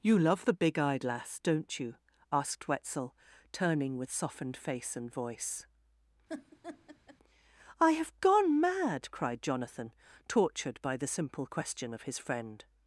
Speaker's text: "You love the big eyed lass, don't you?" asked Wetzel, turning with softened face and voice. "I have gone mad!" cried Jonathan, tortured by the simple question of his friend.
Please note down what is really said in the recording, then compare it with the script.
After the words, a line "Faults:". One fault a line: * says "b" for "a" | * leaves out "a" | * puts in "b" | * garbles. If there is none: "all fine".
"You love the big eyed lass, don't you?" asked Wetzel, turning with softened face and voice. "I have gone mad!" cried Jonathan, tortured by the simple question of his friend.
Faults:
all fine